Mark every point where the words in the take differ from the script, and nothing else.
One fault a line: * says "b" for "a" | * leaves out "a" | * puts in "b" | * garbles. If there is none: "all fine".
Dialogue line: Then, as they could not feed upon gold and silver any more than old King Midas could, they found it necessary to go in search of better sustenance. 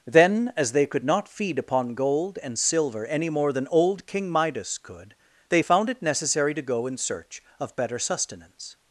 all fine